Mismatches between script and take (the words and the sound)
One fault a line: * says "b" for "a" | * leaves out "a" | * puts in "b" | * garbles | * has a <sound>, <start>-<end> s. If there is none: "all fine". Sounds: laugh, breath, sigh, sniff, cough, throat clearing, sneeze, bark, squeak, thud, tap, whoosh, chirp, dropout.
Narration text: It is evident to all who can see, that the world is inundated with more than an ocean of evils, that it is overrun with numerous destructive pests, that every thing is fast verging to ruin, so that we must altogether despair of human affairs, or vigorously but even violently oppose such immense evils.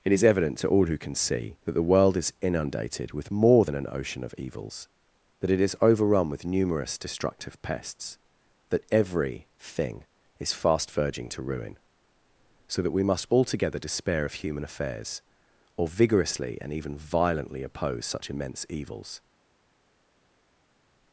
* says "and" for "but"